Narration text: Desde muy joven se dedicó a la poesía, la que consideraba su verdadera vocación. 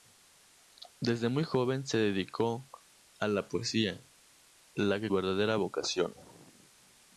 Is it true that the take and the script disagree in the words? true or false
true